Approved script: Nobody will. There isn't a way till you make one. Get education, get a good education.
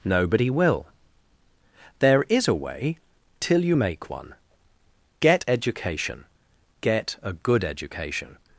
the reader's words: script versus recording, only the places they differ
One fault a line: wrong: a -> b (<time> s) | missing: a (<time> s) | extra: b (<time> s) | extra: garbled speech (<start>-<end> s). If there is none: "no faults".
wrong: isn't -> is (2.3 s)